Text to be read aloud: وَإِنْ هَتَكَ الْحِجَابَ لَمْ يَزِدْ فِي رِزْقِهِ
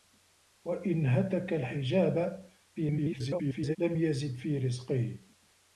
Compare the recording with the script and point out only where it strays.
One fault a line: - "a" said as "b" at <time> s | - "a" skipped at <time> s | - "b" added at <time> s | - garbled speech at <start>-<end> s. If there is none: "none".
- garbled speech at 2.8-3.8 s